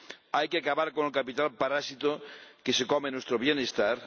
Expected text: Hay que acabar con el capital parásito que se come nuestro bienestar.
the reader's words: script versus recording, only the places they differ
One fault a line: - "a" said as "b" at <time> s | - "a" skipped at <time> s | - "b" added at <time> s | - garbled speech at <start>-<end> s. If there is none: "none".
none